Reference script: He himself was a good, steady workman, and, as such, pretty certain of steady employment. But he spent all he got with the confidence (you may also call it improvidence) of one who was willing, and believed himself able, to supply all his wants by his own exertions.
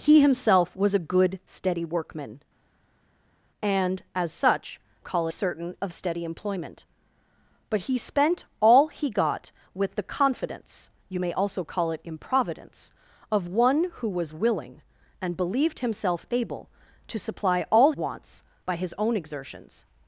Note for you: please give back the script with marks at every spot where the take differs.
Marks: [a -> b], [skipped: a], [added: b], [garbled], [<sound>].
He himself was a good, steady workman, and, as such, [pretty -> call] certain of steady employment. But he spent all he got with the confidence (you may also call it improvidence) of one who was willing, and believed himself able, to supply all [skipped: his] wants by his own exertions.